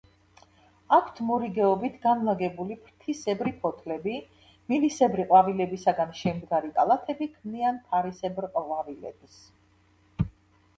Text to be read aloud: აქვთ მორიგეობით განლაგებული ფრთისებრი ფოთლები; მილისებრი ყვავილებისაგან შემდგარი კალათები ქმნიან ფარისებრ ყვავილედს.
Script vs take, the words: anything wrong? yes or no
no